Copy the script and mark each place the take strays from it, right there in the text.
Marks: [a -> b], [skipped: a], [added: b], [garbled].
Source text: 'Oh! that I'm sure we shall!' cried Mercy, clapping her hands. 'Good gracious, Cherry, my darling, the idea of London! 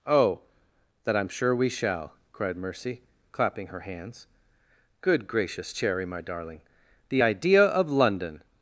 'Oh! that I'm sure we shall!' cried Mercy, clapping her hands. 'Good gracious, Cherry, my darling, the idea of London!